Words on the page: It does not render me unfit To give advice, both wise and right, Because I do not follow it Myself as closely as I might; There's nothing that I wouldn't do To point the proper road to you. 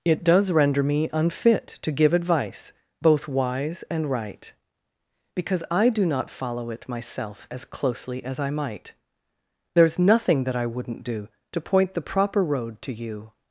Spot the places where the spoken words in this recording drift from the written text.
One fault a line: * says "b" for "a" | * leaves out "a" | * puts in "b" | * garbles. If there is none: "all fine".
* leaves out "not"